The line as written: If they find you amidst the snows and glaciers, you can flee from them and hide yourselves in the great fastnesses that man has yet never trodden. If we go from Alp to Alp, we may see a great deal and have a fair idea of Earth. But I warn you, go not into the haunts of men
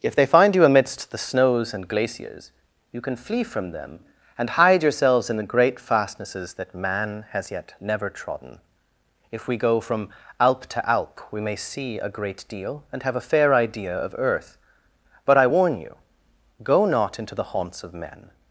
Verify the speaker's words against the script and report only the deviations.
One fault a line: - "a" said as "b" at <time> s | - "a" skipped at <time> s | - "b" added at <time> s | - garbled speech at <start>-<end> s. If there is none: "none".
none